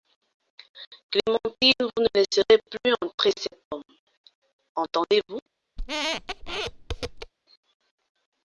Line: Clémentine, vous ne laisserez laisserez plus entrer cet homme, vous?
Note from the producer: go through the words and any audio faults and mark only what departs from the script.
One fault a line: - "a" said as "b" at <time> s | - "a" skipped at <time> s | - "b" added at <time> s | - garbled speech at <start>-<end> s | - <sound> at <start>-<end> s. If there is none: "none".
- "laisserez" skipped at 2.6 s
- "entendez" added at 4.8 s
- squeak at 5.8-7.3 s